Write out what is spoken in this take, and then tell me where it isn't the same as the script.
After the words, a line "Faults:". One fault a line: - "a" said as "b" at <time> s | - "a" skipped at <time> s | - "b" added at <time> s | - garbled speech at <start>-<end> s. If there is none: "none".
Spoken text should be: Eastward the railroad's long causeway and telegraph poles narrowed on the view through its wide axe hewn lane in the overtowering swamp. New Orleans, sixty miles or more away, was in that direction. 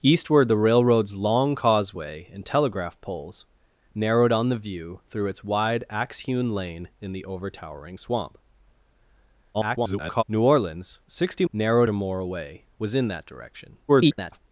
Eastward the railroad's long causeway and telegraph poles narrowed on the view through its wide axe hewn lane in the overtowering swamp. [garbled] New Orleans, sixty narrowed or more away, was in that direction. [garbled]
Faults:
- garbled speech at 9.5-10.2 s
- "miles" said as "narrowed" at 11.5 s
- garbled speech at 13.9-14.4 s